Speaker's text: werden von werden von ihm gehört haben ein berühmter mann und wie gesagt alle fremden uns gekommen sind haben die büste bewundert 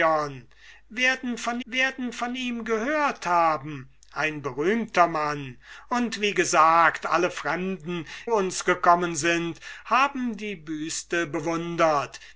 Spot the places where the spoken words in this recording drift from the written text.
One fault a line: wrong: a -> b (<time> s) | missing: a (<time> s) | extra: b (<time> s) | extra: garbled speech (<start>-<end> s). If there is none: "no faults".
no faults